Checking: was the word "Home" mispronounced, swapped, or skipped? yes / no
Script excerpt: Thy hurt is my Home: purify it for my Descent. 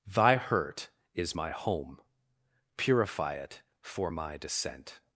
no